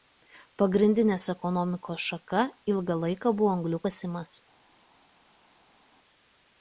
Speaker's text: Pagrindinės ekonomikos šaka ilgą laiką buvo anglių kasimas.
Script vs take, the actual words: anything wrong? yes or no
no